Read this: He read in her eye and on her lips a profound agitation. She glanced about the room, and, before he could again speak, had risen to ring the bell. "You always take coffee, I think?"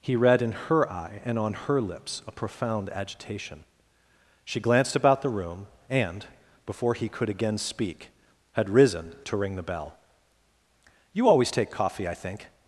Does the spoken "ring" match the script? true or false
true